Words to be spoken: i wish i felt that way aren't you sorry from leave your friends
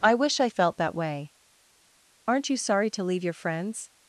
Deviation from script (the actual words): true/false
true